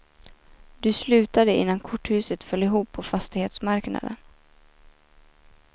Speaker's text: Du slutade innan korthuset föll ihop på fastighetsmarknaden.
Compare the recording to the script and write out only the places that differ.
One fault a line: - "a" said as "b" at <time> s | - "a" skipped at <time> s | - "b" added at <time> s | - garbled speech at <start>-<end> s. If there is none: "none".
none